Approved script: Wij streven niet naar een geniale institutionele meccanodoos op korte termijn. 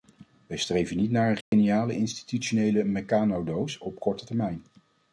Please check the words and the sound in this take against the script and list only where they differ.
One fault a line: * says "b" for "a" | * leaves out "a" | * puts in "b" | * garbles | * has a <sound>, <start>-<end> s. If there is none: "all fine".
* has a dropout, 1.4-1.5 s